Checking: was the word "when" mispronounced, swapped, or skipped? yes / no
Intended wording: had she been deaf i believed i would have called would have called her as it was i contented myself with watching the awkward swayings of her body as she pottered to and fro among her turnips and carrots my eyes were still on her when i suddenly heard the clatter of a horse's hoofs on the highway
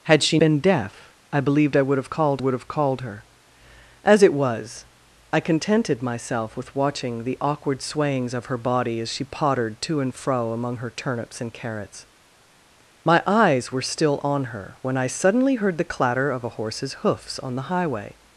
no